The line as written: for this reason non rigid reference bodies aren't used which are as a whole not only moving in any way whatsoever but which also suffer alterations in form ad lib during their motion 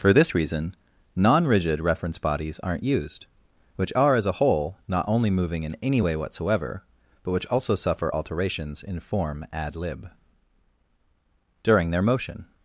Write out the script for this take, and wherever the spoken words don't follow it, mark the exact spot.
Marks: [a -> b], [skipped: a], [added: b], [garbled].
for this reason non rigid reference bodies aren't used which are as a whole not only moving in any way whatsoever but which also suffer alterations in form ad lib during their motion